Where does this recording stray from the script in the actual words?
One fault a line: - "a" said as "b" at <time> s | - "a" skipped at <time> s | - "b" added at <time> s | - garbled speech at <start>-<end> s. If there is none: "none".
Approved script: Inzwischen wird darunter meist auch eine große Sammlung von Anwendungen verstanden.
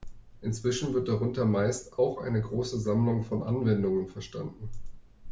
none